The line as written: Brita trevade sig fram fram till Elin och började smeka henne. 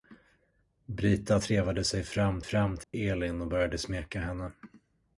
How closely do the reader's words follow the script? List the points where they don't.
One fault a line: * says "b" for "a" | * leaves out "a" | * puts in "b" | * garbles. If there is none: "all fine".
all fine